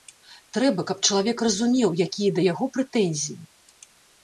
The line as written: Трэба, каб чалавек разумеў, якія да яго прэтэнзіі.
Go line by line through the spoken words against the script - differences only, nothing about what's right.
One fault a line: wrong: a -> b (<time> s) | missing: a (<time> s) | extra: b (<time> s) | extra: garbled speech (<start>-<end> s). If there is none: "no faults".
no faults